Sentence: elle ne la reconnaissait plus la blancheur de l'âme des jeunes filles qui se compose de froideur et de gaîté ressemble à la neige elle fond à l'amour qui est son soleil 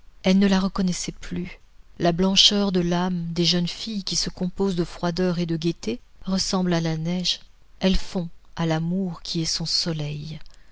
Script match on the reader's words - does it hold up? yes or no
yes